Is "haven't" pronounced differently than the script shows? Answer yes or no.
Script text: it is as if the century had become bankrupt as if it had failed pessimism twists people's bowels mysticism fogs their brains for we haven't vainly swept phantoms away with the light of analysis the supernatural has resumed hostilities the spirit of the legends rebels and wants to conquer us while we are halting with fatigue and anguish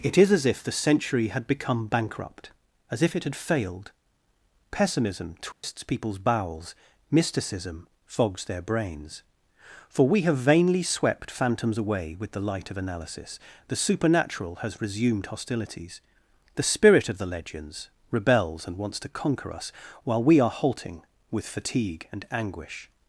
yes